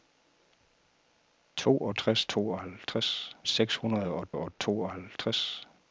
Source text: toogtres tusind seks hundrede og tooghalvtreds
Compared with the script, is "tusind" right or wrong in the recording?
wrong